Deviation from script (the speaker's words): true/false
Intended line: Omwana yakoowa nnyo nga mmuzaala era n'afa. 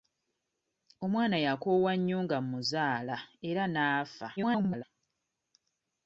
true